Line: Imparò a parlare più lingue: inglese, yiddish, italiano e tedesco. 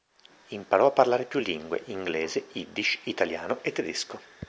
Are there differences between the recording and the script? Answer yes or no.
no